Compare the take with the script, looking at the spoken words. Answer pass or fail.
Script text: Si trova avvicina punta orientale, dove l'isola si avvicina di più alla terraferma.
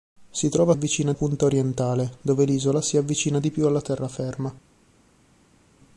pass